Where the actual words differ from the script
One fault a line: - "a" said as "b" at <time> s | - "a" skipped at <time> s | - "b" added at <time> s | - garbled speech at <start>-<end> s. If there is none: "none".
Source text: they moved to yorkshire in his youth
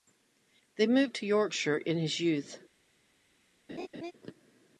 none